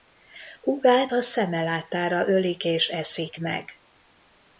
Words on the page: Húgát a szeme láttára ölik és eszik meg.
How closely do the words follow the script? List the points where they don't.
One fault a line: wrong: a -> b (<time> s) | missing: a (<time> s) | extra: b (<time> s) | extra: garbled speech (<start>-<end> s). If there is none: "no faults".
no faults